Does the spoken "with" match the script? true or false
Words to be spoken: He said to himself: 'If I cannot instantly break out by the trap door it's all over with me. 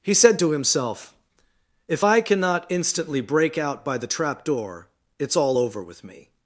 true